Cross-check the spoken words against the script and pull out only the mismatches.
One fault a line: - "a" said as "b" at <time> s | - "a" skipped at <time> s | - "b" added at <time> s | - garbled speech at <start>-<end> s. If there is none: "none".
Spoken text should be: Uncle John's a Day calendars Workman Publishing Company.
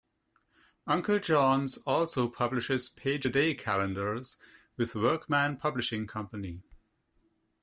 - "also publishes Page" added at 1.9 s
- "with" added at 4.8 s